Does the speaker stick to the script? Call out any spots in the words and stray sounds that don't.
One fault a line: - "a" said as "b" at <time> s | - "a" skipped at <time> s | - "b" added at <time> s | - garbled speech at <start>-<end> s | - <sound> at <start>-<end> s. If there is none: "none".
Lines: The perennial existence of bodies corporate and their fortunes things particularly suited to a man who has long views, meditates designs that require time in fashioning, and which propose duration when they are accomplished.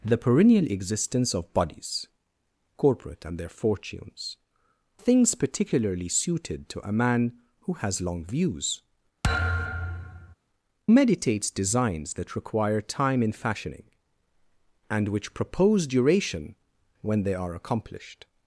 - thud at 9.2-10.4 s